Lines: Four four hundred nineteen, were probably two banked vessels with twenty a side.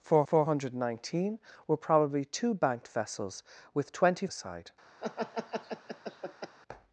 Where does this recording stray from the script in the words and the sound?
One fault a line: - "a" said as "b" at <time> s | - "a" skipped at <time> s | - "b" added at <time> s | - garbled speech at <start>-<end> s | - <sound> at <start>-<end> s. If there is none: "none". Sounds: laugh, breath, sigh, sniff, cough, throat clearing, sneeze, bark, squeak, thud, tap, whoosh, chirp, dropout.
- laugh at 5.0-6.6 s